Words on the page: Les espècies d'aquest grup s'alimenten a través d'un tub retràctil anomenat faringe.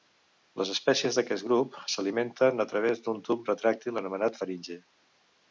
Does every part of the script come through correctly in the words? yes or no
yes